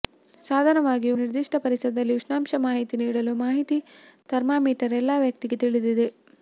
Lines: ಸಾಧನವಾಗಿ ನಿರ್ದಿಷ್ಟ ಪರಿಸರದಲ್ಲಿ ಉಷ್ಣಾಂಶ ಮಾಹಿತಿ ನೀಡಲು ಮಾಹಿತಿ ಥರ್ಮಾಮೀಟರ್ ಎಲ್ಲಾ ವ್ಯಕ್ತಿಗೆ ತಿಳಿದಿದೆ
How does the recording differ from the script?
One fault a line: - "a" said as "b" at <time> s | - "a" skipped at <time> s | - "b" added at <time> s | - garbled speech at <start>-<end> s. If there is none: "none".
none